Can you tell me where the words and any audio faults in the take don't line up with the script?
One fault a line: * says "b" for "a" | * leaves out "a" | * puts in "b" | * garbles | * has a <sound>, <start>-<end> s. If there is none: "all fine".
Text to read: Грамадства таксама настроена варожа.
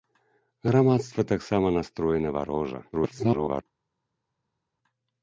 * garbles